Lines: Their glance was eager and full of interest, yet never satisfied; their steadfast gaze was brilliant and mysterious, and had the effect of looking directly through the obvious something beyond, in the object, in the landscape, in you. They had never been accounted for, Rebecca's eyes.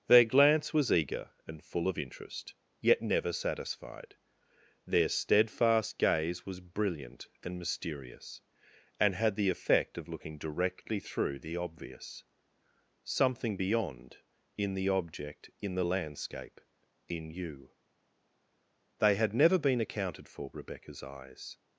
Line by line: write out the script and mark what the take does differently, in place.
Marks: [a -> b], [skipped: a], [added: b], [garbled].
Their glance was eager and full of interest, yet never satisfied; their steadfast gaze was brilliant and mysterious, and had the effect of looking directly through the obvious something beyond, in the object, in the landscape, in you. They had never been accounted for, Rebecca's eyes.